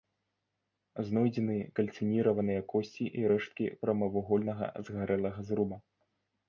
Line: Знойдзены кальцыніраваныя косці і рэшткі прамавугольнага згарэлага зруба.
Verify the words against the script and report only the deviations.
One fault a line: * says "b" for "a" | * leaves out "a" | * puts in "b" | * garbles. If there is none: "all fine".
all fine